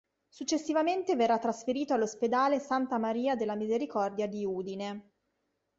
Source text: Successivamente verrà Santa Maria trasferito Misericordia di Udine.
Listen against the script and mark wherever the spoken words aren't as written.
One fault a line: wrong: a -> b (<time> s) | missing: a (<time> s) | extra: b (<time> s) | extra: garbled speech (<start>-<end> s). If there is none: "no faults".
extra: trasferito all'ospedale (1.4 s)
wrong: trasferito -> della (3.4 s)